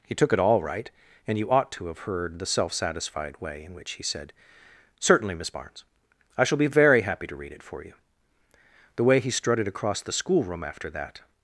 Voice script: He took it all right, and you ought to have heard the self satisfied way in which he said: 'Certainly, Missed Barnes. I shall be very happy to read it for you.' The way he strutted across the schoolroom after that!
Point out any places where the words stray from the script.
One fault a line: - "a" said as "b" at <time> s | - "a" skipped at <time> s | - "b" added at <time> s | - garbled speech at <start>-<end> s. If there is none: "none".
- "Missed" said as "Miss" at 5.3 s